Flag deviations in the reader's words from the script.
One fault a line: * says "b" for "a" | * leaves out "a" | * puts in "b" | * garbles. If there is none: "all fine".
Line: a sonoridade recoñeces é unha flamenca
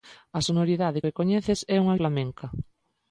all fine